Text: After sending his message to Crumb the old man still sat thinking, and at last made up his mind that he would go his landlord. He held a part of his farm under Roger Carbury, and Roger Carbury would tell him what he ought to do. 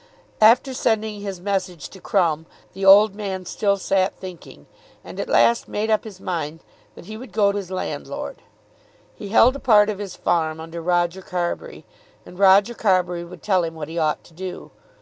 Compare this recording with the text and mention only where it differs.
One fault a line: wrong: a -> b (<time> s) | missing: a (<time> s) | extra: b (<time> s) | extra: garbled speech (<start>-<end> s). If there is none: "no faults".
no faults